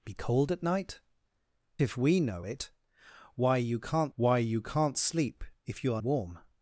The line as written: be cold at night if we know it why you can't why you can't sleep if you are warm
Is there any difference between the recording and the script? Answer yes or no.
no